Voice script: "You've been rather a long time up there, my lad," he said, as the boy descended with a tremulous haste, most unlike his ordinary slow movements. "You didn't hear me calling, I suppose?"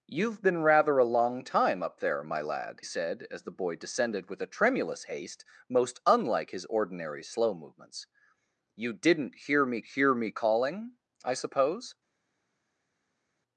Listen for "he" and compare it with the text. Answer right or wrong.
wrong